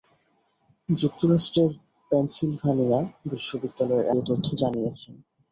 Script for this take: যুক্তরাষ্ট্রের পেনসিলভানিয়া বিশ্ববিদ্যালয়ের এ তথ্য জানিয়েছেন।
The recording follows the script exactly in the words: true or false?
true